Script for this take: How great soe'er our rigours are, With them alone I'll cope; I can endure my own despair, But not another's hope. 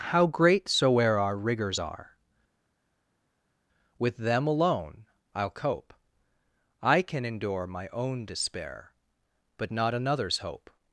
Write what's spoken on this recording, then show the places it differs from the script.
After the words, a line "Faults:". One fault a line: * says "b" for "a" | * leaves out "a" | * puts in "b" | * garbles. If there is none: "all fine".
How great soe'er our rigours are, With them alone I'll cope; I can endure my own despair, But not another's hope.
Faults:
all fine